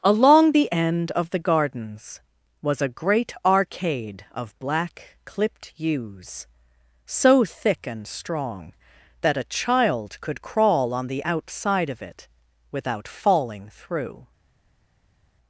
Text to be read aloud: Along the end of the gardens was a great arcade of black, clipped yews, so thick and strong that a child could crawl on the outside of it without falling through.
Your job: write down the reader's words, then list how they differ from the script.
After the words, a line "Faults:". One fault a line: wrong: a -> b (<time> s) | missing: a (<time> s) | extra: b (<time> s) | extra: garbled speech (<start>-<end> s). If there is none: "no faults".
Along the end of the gardens was a great arcade of black, clipped yews, so thick and strong that a child could crawl on the outside of it without falling through.
Faults:
no faults